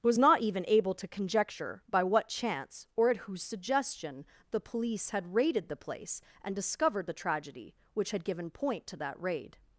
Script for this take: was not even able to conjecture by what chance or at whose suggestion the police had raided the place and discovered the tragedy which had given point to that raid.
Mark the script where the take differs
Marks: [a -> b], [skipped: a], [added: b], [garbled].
was not even able to conjecture by what chance or at whose suggestion the police had raided the place and discovered the tragedy which had given point to that raid.